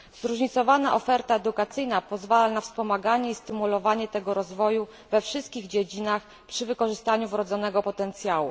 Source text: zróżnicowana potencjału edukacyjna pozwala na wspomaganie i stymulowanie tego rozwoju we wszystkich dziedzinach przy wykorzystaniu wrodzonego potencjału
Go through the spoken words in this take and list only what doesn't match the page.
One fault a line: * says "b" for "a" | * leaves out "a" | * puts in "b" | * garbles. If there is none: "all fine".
* says "oferta" for "potencjału"